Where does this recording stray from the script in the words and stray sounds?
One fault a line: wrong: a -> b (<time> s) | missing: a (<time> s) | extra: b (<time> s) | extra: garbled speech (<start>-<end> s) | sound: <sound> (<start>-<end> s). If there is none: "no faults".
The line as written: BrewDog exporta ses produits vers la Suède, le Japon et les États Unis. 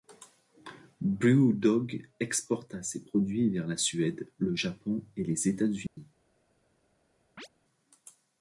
sound: dropout (5.9-6.0 s)
sound: chirp (7.4-7.5 s)